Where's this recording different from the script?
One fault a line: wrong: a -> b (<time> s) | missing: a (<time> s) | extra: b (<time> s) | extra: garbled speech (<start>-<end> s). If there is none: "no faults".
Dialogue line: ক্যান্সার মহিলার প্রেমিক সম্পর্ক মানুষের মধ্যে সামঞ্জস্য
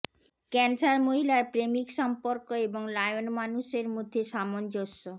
extra: এবং লায়ন (2.7 s)